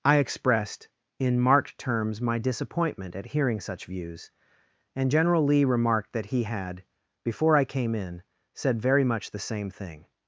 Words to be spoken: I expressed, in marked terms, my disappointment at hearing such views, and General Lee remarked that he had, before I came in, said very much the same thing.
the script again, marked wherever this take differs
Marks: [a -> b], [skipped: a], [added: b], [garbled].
I expressed, in marked terms, my disappointment at hearing such views, and General Lee remarked that he had, before I came in, said very much the same thing.